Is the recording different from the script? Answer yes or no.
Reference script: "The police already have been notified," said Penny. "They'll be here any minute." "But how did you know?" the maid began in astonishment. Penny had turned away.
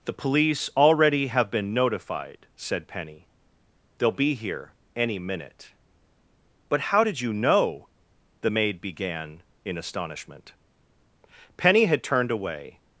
no